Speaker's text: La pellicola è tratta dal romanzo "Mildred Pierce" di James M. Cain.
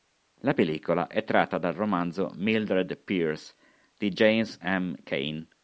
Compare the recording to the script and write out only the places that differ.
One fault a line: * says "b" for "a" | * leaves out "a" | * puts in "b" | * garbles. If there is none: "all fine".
all fine